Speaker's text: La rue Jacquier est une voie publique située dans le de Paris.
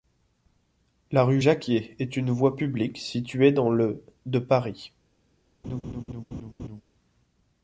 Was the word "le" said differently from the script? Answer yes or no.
no